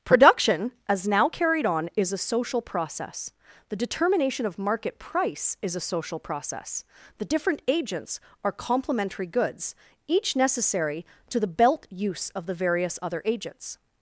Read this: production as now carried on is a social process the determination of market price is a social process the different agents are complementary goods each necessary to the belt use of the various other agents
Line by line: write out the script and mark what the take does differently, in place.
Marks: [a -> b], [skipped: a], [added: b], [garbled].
production as now carried on is a social process the determination of market price is a social process the different agents are complementary goods each necessary to the belt use of the various other agents